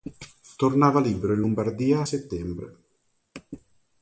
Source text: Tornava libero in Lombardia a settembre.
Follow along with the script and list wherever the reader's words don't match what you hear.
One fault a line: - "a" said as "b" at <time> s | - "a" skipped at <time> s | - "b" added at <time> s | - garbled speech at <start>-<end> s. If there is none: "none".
none